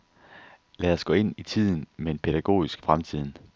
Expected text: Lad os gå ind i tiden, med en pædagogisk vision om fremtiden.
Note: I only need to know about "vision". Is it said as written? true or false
false